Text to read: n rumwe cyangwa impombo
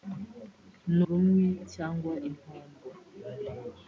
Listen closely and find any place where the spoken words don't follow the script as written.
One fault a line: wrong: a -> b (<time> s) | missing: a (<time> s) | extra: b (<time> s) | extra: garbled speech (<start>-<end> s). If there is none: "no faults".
no faults